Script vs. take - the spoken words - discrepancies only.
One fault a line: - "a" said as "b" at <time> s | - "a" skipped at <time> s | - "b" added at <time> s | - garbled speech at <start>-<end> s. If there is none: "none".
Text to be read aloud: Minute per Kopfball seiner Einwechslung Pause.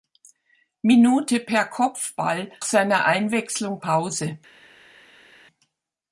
none